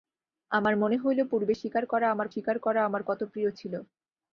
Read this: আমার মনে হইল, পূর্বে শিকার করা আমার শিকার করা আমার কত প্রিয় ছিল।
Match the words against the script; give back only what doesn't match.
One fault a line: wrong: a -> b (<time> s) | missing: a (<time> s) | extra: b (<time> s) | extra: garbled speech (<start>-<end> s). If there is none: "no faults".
no faults